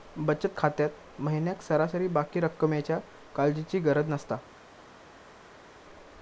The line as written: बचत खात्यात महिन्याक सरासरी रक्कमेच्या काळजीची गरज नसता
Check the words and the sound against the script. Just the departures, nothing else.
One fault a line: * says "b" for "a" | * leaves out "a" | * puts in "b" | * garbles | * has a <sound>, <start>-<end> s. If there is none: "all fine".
* puts in "बाकी"